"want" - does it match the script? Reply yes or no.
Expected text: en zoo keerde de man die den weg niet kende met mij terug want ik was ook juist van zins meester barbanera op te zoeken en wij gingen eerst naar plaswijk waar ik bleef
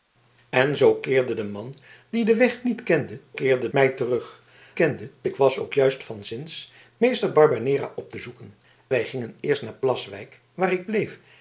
no